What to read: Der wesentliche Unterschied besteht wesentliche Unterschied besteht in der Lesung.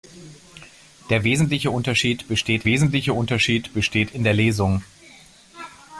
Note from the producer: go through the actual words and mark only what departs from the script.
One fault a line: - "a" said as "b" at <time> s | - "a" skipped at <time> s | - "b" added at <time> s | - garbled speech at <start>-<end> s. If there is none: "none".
none